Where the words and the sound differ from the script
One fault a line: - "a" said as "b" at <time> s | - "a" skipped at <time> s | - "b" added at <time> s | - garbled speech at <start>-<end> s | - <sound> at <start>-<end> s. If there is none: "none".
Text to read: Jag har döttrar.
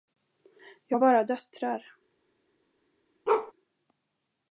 - "bara" added at 1.0 s
- bark at 3.3-3.5 s